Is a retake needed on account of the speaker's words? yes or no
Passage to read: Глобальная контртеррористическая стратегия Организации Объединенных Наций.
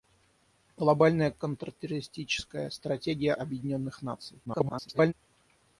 yes